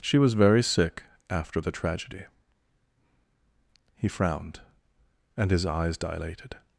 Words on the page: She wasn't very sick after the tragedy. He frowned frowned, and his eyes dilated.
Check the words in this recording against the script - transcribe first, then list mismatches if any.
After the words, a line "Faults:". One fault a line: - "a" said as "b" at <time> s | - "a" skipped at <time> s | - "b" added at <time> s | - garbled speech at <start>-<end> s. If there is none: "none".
She was very sick after the tragedy. He frowned, and his eyes dilated.
Faults:
- "wasn't" said as "was" at 0.2 s
- "frowned" skipped at 4.6 s